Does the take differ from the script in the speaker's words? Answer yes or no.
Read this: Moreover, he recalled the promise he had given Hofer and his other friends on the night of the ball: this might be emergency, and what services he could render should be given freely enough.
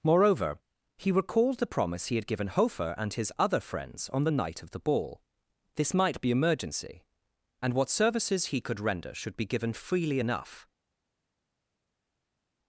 no